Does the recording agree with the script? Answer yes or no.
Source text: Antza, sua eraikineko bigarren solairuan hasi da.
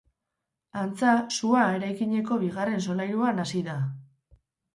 yes